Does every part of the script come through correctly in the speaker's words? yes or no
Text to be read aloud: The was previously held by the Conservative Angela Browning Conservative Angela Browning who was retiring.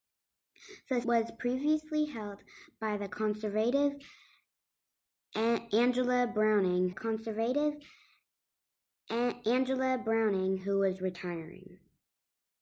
yes